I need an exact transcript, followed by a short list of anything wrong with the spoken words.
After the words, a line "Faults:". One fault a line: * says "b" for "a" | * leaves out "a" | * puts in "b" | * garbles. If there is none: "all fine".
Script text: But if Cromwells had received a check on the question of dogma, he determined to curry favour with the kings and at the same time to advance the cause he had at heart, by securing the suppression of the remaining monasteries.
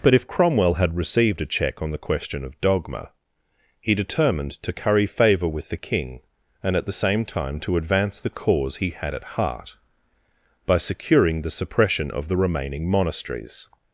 But if Cromwell had received a check on the question of dogma, he determined to curry favour with the king and at the same time to advance the cause he had at heart, by securing the suppression of the remaining monasteries.
Faults:
* says "Cromwell" for "Cromwells"
* says "king" for "kings"